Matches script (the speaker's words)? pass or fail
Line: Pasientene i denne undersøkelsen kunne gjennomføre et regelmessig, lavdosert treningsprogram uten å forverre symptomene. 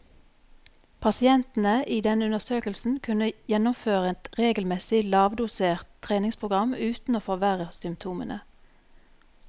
pass